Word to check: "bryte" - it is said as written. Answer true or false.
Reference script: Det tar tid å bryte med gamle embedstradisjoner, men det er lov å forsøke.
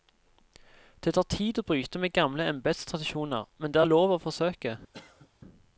true